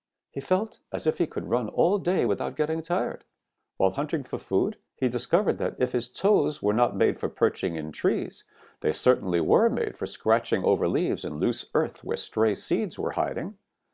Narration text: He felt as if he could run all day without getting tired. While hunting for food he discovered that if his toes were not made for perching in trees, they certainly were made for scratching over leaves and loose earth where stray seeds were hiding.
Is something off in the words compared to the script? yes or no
no